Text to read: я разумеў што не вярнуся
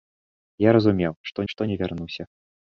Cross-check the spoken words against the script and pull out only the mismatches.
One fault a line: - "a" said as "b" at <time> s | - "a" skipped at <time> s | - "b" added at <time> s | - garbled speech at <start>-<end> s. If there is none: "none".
- "што" added at 1.5 s